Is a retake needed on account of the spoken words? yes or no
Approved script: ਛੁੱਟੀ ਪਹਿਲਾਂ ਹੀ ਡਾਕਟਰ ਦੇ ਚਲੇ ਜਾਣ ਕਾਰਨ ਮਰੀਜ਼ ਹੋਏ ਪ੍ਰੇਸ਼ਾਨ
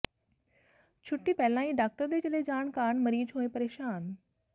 no